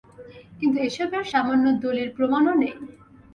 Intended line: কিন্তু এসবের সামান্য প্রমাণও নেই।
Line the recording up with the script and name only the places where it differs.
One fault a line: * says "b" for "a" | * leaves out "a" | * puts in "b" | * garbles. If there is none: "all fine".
* puts in "দলিল"